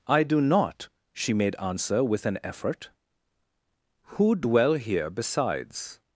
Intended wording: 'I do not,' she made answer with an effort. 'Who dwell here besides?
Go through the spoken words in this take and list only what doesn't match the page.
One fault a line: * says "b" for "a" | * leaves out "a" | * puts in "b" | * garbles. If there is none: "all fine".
all fine